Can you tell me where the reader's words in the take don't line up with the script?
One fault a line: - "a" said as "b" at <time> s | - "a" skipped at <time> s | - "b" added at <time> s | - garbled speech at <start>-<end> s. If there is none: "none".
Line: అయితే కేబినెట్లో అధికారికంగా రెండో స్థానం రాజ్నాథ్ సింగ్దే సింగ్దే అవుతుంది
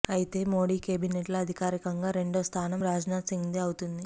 - "మోడీ" added at 0.5 s
- "సింగ్దే" skipped at 3.6 s